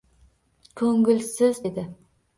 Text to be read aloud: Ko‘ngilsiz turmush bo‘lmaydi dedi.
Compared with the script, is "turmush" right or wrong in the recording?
wrong